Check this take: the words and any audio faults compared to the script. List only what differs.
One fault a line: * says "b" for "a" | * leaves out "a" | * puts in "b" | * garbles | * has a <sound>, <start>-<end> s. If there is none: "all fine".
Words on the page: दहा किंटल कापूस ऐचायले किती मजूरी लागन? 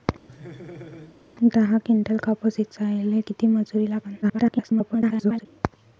* has a laugh, 0.3-1.2 s
* garbles